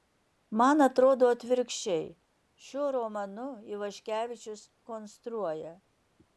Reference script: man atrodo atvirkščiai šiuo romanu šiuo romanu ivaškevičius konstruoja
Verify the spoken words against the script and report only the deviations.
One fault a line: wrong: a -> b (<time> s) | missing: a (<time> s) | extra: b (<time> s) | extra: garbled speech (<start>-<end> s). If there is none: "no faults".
missing: šiuo romanu (3.5 s)